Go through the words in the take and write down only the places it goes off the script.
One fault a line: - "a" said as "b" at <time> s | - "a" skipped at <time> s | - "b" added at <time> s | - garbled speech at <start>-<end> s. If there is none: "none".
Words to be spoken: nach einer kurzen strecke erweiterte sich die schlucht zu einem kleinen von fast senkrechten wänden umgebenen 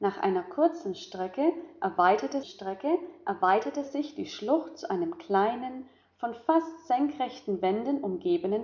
- "strecke erweiterte" added at 2.4 s